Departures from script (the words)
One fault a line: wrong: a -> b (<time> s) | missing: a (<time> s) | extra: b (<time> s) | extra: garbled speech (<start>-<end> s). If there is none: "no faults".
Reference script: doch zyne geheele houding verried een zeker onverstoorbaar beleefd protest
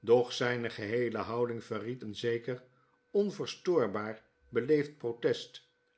no faults